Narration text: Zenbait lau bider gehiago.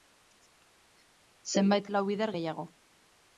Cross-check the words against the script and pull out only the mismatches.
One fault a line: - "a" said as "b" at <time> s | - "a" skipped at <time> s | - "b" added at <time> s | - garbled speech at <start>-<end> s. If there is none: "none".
none